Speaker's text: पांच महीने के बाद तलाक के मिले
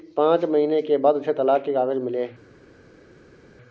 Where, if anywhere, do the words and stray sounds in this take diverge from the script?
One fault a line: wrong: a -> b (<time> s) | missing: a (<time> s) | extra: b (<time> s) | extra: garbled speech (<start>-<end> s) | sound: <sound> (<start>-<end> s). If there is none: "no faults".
extra: उसे (1.1 s)
extra: कागज (1.7 s)